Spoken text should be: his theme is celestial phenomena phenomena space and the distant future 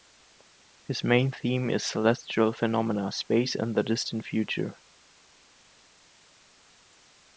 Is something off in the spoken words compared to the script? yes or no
yes